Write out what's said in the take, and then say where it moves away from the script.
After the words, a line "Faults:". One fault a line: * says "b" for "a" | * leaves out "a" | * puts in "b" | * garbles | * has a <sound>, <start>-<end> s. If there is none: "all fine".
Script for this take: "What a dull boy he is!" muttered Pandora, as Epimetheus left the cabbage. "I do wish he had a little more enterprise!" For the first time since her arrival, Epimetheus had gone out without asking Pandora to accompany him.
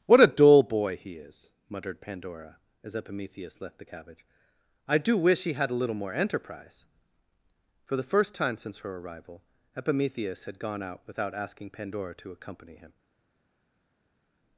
"What a dull boy he is!" muttered Pandora, as Epimetheus left the cabbage. "I do wish he had a little more enterprise!" For the first time since her arrival, Epimetheus had gone out without asking Pandora to accompany him.
Faults:
all fine